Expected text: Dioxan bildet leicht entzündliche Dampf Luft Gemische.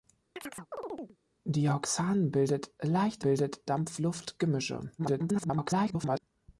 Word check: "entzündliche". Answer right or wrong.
wrong